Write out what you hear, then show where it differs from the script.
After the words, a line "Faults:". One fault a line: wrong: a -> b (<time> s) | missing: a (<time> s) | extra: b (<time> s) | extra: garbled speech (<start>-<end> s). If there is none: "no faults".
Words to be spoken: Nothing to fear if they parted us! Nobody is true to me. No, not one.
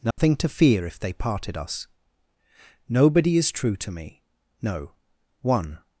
Nothing to fear if they parted us! Nobody is true to me. No, one.
Faults:
missing: not (4.9 s)